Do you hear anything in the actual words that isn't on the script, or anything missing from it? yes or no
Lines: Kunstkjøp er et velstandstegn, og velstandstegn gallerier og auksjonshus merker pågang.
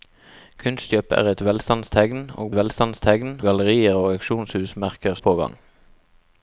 no